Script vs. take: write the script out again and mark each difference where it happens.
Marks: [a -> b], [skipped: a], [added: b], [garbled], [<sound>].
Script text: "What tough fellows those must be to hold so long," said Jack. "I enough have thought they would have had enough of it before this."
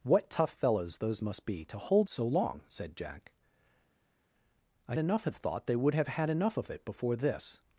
"What tough fellows those must be to hold so long," said Jack. "I enough have thought they would have had enough of it before this."